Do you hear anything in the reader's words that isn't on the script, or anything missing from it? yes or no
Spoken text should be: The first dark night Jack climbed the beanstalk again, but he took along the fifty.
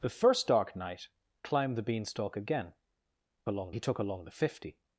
yes